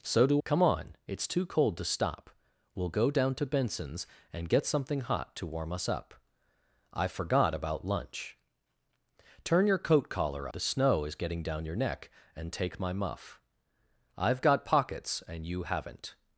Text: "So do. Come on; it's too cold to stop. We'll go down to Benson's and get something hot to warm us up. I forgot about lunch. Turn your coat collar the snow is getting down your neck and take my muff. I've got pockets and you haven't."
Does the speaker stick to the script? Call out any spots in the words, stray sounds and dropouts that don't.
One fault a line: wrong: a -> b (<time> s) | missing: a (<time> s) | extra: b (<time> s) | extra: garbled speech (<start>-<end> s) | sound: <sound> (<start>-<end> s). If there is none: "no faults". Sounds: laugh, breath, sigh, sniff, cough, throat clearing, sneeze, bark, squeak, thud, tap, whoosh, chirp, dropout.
no faults